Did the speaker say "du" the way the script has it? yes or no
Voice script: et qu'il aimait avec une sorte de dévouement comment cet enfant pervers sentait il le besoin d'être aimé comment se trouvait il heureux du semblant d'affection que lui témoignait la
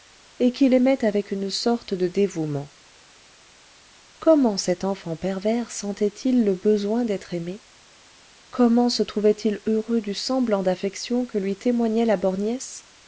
yes